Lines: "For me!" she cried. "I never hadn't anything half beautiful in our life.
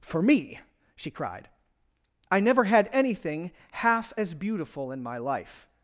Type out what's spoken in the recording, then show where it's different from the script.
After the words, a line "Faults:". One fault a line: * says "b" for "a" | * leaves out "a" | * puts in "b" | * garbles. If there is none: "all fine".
"For me!" she cried. "I never had anything half as beautiful in my life.
Faults:
* says "had" for "hadn't"
* puts in "as"
* says "my" for "our"